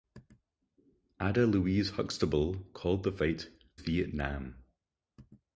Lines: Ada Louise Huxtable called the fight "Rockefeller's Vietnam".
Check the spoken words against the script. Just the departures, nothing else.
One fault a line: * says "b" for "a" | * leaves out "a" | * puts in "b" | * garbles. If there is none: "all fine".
* leaves out "Rockefeller's"